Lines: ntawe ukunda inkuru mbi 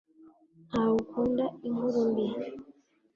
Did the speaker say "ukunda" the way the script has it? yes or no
yes